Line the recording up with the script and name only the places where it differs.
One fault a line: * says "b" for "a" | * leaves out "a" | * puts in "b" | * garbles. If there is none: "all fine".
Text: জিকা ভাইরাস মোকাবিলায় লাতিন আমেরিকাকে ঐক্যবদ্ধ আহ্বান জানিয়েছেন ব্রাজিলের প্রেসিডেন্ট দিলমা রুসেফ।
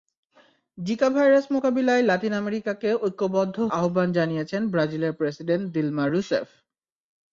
all fine